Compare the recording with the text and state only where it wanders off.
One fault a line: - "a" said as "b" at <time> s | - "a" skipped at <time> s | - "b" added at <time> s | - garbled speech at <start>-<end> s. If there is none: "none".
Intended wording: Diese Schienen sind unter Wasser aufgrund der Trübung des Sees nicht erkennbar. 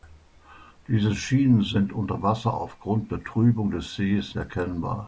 - "nicht" skipped at 4.3 s